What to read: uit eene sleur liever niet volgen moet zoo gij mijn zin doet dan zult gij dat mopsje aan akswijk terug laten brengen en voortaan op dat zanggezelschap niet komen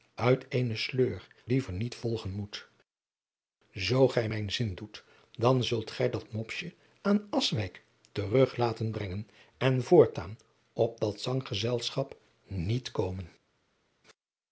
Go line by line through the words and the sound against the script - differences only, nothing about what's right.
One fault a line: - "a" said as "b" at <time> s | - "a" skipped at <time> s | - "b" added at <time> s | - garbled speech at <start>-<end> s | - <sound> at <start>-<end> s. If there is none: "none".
none